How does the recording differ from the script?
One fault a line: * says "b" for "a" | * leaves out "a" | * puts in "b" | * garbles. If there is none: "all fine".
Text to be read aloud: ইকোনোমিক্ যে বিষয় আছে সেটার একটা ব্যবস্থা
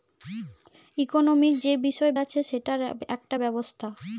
all fine